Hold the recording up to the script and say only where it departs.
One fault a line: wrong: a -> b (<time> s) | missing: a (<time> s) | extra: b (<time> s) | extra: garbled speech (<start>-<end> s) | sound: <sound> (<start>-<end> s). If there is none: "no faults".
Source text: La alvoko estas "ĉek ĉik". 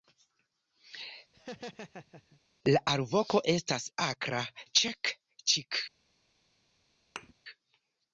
sound: laugh (1.3-2.4 s)
extra: akra (4.1 s)
sound: thud (7.2-7.3 s)